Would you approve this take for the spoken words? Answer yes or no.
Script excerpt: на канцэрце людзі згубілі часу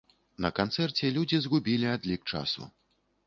no